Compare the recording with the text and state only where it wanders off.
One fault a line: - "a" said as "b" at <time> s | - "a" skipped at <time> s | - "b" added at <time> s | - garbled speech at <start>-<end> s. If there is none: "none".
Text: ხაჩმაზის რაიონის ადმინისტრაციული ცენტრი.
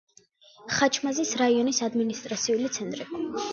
none